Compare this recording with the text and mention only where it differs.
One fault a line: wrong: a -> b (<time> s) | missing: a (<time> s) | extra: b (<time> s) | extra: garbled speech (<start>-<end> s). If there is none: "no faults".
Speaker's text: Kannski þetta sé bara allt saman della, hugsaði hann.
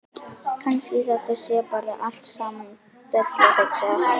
no faults